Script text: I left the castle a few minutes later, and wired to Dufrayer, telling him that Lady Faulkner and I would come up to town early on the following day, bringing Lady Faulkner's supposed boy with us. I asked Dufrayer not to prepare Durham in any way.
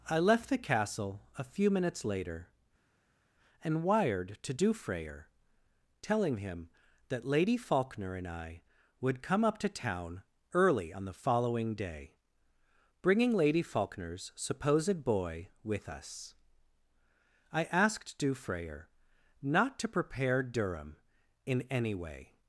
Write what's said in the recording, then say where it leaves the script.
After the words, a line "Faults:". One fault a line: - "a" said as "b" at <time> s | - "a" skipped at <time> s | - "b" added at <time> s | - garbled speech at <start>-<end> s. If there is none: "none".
I left the castle a few minutes later, and wired to Dufrayer, telling him that Lady Faulkner and I would come up to town early on the following day, bringing Lady Faulkner's supposed boy with us. I asked Dufrayer not to prepare Durham in any way.
Faults:
none